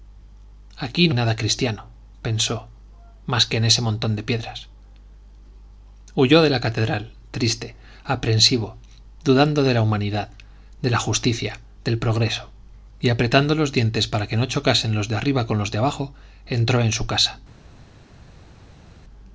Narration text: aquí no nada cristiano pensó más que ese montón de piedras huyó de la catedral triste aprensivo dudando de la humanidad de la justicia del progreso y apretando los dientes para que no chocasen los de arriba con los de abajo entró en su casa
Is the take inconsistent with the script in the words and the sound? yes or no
no